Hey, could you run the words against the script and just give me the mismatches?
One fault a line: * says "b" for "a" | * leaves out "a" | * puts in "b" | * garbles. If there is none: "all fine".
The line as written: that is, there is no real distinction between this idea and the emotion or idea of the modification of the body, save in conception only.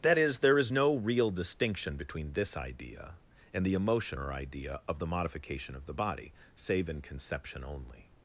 all fine